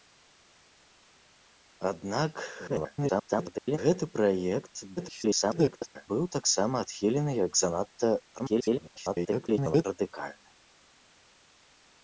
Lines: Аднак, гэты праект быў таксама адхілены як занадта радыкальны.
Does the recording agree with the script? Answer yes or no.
no